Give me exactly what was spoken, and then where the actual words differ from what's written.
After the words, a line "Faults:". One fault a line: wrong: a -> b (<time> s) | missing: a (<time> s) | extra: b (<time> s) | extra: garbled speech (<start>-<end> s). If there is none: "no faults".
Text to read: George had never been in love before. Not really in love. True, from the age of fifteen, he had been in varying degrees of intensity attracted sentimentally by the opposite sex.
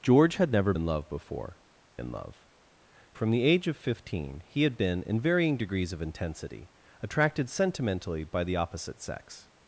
George had never in love before. In love. From the age of fifteen, he had been in varying degrees of intensity attracted sentimentally by the opposite sex.
Faults:
missing: been (0.7 s)
missing: Not really (1.6 s)
missing: True (2.5 s)